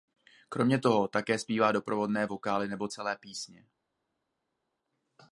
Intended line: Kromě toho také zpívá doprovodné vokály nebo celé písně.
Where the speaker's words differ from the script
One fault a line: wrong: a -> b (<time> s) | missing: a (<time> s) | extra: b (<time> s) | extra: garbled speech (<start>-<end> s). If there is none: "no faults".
no faults